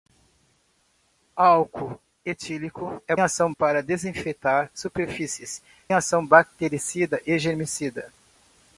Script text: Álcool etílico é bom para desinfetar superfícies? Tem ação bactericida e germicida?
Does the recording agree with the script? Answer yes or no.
no